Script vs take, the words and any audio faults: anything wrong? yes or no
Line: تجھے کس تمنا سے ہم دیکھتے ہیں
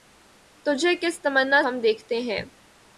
yes